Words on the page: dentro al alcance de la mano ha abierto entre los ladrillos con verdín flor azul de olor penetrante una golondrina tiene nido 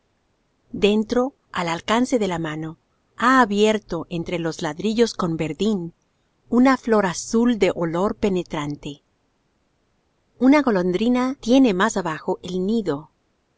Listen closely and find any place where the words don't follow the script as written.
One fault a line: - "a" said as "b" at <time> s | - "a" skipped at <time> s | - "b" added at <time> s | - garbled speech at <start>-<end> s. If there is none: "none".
- "una" added at 6.5 s
- "más abajo el" added at 11.7 s